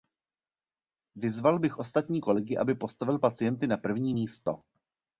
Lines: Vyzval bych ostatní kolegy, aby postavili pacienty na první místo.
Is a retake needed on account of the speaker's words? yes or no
no